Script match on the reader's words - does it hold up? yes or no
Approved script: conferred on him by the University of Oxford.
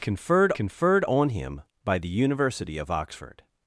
no